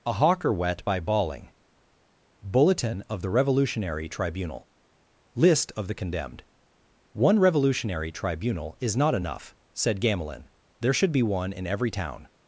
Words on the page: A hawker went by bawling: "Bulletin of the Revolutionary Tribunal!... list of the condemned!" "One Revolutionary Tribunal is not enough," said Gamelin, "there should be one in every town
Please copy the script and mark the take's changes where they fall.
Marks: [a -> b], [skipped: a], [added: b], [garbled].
A hawker [went -> wet] by bawling: "Bulletin of the Revolutionary Tribunal!... list of the condemned!" "One Revolutionary Tribunal is not enough," said Gamelin, "there should be one in every town